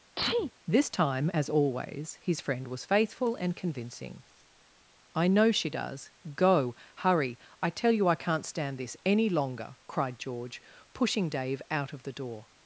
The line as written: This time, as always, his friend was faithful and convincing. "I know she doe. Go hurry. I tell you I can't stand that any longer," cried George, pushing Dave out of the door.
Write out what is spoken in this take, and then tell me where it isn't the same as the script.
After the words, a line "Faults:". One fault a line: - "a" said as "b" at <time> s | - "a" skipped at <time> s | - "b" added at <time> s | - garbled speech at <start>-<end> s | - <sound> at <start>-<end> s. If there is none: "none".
This time, as always, his friend was faithful and convincing. "I know she does. Go hurry. I tell you I can't stand this any longer," cried George, pushing Dave out of the door.
Faults:
- sneeze at 0.2-0.5 s
- "doe" said as "does" at 5.7 s
- "that" said as "this" at 8.8 s